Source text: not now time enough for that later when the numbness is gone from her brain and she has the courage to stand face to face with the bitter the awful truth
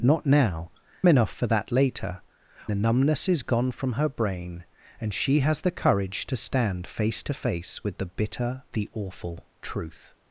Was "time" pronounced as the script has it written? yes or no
no